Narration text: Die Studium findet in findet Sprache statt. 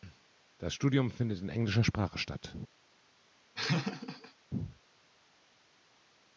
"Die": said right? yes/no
no